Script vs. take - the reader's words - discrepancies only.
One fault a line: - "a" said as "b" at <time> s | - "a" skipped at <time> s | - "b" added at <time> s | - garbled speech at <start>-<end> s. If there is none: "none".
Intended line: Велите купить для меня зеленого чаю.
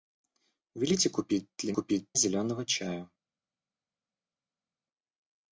- "меня" said as "купить" at 1.7 s